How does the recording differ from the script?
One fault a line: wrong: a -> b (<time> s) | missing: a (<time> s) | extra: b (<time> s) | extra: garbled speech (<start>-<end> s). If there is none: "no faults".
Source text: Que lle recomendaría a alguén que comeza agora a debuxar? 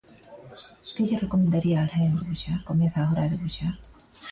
wrong: que -> debuxar (2.2 s)